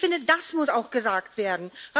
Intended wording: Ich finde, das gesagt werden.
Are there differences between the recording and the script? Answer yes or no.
yes